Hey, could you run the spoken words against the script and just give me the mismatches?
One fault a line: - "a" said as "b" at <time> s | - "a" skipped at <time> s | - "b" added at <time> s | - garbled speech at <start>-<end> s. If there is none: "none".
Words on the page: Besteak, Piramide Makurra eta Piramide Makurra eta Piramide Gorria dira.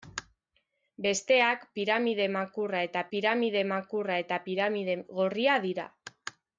none